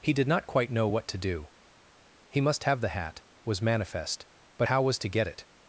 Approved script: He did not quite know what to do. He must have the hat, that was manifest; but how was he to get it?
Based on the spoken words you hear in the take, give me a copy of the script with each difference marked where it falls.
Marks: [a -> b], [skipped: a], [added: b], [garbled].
He did not quite know what to do. He must have the hat, [skipped: that] was manifest; but how was [skipped: he] to get it?